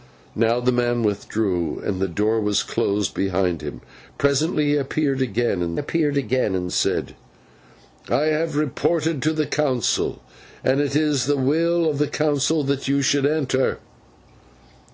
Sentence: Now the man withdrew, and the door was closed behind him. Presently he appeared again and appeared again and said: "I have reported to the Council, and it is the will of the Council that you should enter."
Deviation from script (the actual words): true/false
false